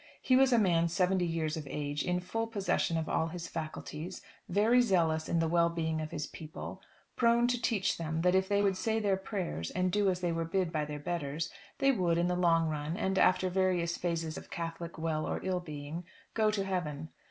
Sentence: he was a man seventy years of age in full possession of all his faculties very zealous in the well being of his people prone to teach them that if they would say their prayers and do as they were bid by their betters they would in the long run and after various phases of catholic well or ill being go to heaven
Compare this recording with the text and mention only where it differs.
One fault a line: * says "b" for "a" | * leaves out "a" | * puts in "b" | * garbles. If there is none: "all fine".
all fine